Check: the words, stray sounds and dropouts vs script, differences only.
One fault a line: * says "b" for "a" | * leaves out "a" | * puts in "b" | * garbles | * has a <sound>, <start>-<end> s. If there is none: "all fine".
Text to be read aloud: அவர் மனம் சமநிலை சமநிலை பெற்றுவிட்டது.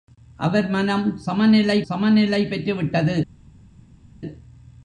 all fine